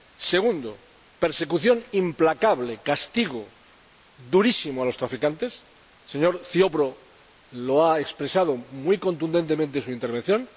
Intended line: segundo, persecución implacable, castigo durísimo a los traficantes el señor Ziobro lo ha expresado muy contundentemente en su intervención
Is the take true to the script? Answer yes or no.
yes